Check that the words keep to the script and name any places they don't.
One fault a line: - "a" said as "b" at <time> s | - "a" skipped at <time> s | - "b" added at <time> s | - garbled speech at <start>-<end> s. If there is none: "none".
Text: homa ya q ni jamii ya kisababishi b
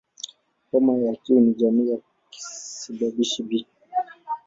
none